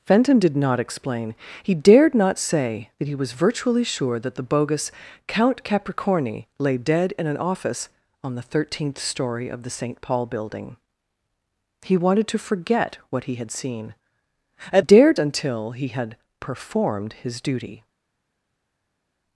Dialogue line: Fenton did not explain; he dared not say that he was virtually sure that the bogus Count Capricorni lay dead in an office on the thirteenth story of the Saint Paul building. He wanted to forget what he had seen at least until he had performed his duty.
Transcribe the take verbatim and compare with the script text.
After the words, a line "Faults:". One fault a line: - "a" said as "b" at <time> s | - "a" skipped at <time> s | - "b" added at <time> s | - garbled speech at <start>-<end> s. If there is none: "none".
Fenton did not explain; he dared not say that he was virtually sure that the bogus Count Capricorni lay dead in an office on the thirteenth story of the Saint Paul building. He wanted to forget what he had seen at dared until he had performed his duty.
Faults:
- "least" said as "dared" at 14.8 s